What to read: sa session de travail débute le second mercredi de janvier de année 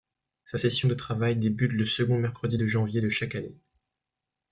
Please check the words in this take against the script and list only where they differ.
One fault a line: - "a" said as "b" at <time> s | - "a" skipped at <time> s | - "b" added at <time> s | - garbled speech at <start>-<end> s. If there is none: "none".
- "chaque" added at 3.1 s